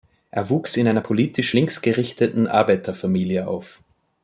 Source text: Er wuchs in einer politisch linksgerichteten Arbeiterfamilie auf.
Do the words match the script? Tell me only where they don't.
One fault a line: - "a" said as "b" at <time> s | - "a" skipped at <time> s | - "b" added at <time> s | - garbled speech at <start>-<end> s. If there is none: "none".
none